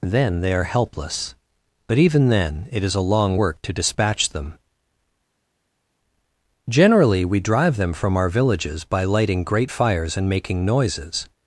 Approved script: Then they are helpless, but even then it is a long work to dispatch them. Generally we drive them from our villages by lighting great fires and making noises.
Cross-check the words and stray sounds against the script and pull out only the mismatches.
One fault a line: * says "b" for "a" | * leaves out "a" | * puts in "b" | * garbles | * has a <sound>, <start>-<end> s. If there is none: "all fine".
all fine